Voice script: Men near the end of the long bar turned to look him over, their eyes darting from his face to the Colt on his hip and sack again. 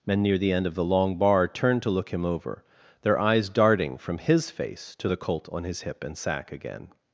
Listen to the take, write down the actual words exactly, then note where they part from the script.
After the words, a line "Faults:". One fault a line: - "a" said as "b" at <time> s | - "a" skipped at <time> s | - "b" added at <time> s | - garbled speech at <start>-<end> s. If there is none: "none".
Men near the end of the long bar turned to look him over, their eyes darting from his face to the Colt on his hip and sack again.
Faults:
none